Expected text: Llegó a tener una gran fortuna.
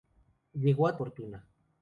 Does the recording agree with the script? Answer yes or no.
no